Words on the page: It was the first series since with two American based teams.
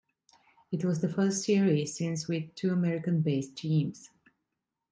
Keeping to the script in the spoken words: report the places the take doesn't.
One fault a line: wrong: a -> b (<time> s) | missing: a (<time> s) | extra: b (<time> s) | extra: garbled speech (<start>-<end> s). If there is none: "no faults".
no faults